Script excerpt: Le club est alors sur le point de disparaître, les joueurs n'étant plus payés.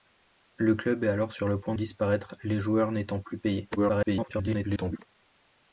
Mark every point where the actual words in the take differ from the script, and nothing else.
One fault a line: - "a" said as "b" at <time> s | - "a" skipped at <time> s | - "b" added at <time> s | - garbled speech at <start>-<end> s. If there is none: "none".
- "de" skipped at 1.8 s
- garbled speech at 3.8-5.0 s